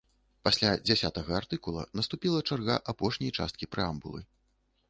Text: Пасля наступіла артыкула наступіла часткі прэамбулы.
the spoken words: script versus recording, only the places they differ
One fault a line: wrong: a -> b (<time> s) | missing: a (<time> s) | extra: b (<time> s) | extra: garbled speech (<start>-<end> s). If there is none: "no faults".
wrong: наступіла -> дзясятага (0.9 s)
extra: чарга апошняй (2.5 s)